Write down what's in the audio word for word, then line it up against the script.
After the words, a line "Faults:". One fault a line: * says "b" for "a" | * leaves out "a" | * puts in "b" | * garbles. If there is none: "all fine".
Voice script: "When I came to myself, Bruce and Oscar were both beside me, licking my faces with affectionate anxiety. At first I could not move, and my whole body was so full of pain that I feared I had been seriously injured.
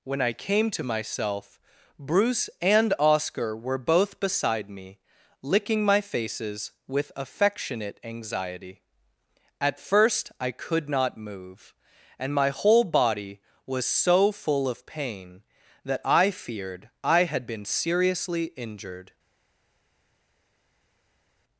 "When I came to myself, Bruce and Oscar were both beside me, licking my faces with affectionate anxiety. At first I could not move, and my whole body was so full of pain that I feared I had been seriously injured.
Faults:
all fine